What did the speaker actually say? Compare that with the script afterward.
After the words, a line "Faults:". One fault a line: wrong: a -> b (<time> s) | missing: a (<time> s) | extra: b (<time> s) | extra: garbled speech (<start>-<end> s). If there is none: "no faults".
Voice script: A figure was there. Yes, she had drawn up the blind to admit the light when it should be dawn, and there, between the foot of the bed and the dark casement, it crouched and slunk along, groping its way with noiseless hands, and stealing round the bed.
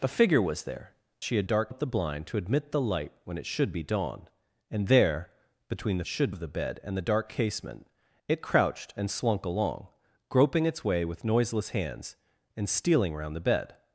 A figure was there. She had dark up the blind to admit the light when it should be dawn, and there, between the should of the bed and the dark casement, it crouched and slunk along, groping its way with noiseless hands, and stealing round the bed.
Faults:
missing: Yes (0.9 s)
wrong: drawn -> dark (1.4 s)
wrong: foot -> should (6.1 s)